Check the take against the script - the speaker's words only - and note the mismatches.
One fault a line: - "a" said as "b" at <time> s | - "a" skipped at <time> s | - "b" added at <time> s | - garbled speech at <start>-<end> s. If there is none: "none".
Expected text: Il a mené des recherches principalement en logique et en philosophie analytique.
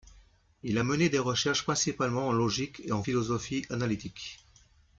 none